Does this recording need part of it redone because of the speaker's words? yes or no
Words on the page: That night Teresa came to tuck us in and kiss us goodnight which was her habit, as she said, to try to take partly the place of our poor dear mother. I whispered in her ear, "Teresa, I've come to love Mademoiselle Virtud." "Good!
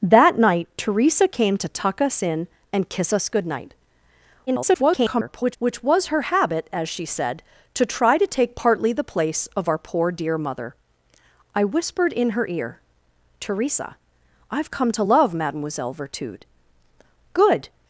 yes